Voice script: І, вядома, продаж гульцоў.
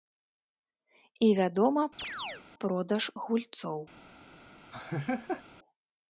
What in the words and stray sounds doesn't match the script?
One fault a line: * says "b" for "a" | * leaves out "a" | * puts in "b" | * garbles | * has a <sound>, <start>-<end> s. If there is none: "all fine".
* has a chirp, 2.0-2.4 s
* has a laugh, 4.7-5.4 s